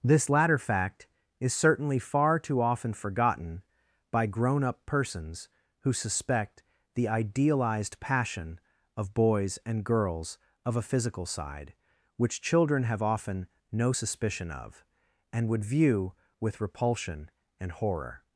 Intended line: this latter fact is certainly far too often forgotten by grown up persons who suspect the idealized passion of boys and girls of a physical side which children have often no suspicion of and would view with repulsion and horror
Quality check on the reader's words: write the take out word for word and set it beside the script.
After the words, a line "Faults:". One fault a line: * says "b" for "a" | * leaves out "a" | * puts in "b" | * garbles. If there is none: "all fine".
this latter fact is certainly far too often forgotten by grown up persons who suspect the idealized passion of boys and girls of a physical side which children have often no suspicion of and would view with repulsion and horror
Faults:
all fine